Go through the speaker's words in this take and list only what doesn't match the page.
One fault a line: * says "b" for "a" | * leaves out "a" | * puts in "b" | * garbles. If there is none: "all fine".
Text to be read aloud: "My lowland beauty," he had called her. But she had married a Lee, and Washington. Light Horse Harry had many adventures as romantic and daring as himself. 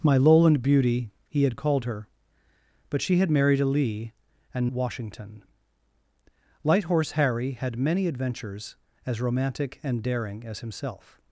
all fine